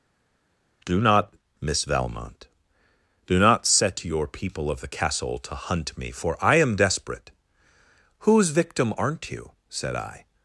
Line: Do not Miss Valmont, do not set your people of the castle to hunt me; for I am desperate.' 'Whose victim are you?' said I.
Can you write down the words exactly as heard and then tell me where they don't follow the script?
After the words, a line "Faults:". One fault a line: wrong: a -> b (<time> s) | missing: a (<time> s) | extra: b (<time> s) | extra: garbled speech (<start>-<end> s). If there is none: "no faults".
Do not Miss Valmont, do not set your people of the castle to hunt me; for I am desperate.' 'Whose victim aren't you?' said I.
Faults:
wrong: are -> aren't (9.0 s)